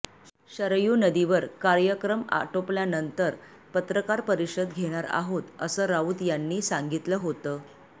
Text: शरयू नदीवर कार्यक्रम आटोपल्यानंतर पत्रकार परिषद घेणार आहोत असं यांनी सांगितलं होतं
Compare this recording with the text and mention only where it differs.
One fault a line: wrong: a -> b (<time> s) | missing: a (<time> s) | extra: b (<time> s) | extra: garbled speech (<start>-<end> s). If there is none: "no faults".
extra: राऊत (5.9 s)